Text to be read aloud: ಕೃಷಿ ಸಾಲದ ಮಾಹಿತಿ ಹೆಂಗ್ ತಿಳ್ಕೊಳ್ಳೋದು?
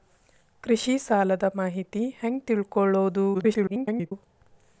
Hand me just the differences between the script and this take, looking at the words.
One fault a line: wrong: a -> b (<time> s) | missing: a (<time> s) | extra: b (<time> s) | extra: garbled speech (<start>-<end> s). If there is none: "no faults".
extra: garbled speech (3.3-4.1 s)